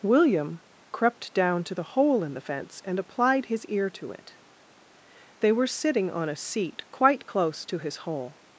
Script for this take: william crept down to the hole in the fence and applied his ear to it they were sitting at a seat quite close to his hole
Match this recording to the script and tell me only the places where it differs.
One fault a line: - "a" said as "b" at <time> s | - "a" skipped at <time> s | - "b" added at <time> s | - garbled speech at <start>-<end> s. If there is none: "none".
- "at" said as "on" at 6.1 s